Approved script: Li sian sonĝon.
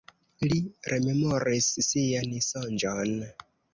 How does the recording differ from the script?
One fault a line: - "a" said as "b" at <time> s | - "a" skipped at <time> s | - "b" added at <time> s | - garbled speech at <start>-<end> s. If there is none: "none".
- "rememoris" added at 0.9 s